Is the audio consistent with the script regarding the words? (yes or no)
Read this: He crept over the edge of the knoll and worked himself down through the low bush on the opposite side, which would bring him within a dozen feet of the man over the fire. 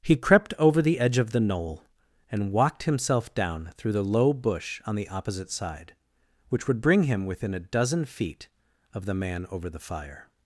no